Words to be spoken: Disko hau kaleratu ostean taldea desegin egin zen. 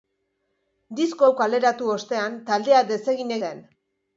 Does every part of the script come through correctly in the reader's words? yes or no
no